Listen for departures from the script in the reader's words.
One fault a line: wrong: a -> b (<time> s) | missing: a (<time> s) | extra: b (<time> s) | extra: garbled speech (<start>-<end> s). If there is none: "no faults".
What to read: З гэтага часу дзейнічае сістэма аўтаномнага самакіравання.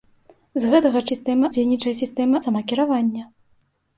wrong: часу -> сістэма (1.1 s)
missing: аўтаномнага (2.4 s)